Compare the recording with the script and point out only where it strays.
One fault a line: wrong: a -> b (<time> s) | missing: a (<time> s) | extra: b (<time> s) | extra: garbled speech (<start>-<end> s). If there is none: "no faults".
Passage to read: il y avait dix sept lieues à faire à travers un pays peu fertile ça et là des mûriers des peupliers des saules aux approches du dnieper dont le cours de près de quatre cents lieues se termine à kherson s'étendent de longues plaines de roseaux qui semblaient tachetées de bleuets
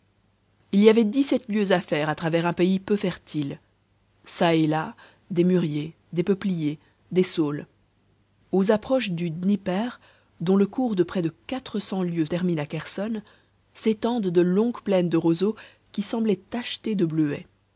missing: se (12.2 s)